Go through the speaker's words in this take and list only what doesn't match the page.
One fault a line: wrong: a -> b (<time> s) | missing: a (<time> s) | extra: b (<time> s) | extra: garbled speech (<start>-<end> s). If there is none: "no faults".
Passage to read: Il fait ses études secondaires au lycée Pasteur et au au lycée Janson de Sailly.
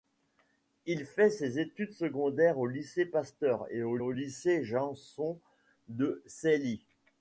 no faults